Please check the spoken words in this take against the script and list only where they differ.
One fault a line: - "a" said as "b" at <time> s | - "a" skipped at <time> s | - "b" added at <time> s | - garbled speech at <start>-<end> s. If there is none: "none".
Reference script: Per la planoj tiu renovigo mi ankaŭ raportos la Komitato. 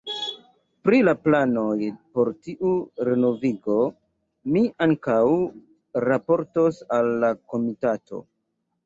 - "Per" said as "Pri" at 0.9 s
- "por" added at 2.1 s
- "al" added at 7.0 s